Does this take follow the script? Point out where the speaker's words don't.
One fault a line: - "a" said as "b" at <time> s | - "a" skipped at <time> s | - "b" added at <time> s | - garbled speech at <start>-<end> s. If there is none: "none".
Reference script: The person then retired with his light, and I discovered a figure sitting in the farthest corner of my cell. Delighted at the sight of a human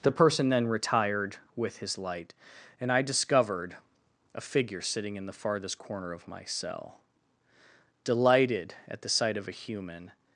none